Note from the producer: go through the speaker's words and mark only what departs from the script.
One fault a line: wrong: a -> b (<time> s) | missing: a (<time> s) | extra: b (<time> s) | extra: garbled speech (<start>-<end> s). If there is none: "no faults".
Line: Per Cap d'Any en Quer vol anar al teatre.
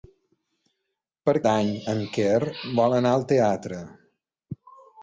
missing: Cap (1.3 s)